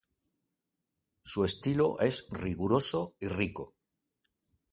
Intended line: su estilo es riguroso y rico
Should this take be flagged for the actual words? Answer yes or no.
no